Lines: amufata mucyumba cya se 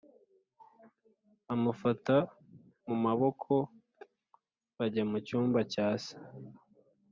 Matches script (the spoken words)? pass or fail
fail